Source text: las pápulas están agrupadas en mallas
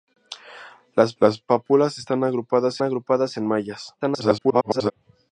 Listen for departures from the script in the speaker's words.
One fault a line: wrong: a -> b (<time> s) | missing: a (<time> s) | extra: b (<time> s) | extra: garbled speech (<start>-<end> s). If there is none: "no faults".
extra: las (1.2 s)
extra: agrupadas (2.8 s)
extra: garbled speech (4.0-4.9 s)